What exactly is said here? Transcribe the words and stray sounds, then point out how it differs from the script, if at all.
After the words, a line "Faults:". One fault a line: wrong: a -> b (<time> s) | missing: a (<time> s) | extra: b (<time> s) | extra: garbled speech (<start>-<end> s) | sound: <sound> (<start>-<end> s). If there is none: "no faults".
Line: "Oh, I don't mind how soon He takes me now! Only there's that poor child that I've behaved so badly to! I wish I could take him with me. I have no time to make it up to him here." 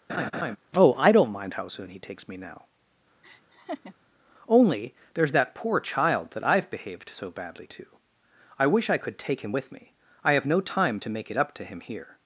"Oh, I don't mind how soon He takes me now! Only there's that poor child that I've behaved so badly to! I wish I could take him with me. I have no time to make it up to him here."
Faults:
sound: laugh (0.1-0.6 s)
sound: laugh (3.2-3.9 s)